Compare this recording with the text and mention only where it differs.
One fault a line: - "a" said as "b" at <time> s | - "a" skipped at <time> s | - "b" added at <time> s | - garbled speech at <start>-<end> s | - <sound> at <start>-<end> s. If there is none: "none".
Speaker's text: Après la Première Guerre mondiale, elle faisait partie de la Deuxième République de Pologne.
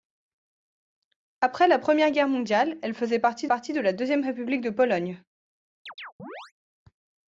- "partie" added at 3.5 s
- chirp at 5.9-6.5 s